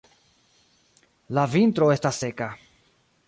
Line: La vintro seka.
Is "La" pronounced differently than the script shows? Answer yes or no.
no